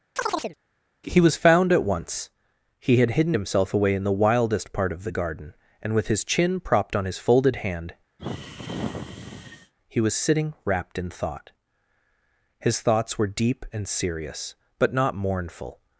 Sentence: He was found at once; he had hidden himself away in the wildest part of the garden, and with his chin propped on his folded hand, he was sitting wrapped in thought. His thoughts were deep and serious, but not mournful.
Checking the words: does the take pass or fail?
pass